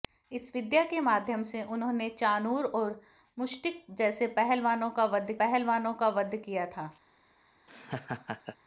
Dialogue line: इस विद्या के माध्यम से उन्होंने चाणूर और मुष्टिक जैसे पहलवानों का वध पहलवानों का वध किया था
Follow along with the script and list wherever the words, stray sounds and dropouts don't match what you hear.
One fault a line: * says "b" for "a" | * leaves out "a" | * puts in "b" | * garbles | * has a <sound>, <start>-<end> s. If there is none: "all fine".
* has a laugh, 7.7-8.6 s